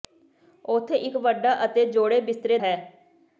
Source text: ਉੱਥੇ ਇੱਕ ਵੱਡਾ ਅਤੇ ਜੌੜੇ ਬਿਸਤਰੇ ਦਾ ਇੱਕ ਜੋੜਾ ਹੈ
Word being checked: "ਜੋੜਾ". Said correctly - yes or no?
no